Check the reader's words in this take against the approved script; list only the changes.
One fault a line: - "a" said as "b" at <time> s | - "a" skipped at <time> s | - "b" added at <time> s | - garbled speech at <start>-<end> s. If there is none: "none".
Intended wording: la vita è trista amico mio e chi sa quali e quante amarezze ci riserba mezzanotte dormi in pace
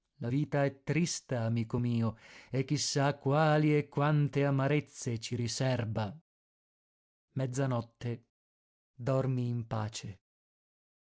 none